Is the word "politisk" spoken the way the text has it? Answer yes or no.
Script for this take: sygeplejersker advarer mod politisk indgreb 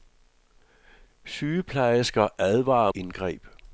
no